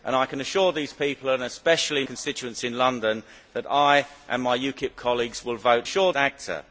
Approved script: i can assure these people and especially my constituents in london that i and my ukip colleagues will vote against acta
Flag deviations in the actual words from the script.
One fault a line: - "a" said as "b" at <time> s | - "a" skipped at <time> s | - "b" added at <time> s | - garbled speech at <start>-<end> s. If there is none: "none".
- "my" skipped at 2.0 s
- "against" said as "assure" at 5.8 s